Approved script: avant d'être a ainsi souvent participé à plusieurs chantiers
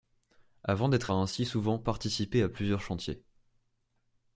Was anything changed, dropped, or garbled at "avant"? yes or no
no